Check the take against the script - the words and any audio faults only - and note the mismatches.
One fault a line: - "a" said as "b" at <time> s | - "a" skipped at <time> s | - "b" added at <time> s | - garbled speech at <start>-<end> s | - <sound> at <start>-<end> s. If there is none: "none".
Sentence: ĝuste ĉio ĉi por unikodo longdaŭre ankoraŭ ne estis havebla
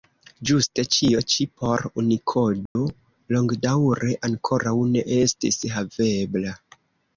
- dropout at 2.7-2.8 s